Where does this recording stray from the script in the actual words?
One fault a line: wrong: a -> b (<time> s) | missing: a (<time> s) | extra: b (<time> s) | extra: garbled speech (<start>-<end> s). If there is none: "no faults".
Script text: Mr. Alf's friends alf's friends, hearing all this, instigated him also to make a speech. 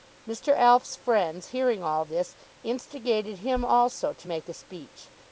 missing: alf's friends (1.5 s)